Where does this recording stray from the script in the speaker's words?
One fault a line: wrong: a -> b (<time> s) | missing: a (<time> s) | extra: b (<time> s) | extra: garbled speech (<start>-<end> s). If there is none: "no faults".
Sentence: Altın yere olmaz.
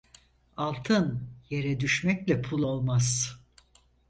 extra: düşmekle pul (1.8 s)